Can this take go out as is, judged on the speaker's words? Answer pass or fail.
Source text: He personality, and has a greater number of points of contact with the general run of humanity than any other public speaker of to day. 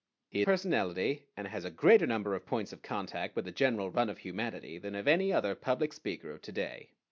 pass